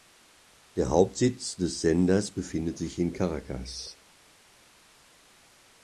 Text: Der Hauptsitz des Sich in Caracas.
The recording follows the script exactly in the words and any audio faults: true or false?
false